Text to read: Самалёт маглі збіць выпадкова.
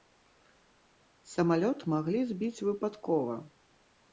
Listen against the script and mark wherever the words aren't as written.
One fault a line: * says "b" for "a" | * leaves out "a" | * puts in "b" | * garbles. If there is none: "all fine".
all fine